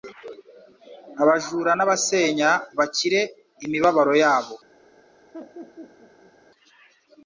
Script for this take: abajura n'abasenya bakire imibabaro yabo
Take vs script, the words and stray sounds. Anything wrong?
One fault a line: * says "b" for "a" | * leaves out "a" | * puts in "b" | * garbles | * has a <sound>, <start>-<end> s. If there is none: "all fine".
* has a laugh, 5.3-6.3 s